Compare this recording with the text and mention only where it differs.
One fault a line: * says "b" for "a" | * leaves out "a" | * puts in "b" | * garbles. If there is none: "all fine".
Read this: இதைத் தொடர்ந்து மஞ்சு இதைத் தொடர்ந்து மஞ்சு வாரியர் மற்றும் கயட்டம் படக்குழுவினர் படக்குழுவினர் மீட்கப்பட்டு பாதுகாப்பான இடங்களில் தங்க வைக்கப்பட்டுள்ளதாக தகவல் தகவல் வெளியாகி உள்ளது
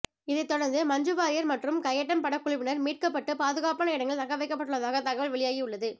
* leaves out "இதைத் தொடர்ந்து மஞ்சு"
* leaves out "படக்குழுவினர்"
* leaves out "தகவல்"